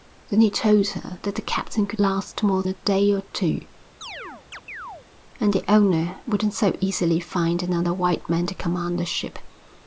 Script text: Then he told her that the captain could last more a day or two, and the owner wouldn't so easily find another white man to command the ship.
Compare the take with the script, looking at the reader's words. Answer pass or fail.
pass